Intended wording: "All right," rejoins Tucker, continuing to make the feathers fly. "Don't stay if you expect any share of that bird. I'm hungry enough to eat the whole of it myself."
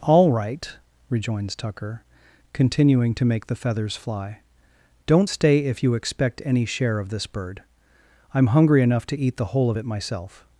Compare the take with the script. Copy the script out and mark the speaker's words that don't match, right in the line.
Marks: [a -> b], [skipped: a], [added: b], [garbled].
"All right," rejoins Tucker, continuing to make the feathers fly. "Don't stay if you expect any share of [that -> this] bird. I'm hungry enough to eat the whole of it myself."